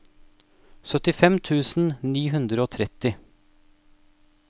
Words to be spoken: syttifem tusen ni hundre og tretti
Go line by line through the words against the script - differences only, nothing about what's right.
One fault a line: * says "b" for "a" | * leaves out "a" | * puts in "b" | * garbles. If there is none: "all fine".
all fine